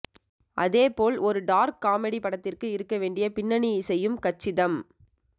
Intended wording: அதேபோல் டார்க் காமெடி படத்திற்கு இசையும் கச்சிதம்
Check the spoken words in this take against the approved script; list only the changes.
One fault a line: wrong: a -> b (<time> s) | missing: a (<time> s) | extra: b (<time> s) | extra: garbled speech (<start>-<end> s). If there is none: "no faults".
extra: ஒரு (1.2 s)
extra: இருக்க வேண்டிய பின்னணி (2.7 s)